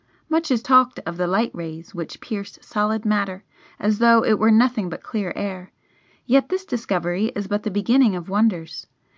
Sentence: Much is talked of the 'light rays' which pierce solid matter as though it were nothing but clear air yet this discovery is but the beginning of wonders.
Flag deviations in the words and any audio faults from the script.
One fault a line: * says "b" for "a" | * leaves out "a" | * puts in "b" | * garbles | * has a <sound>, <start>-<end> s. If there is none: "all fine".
all fine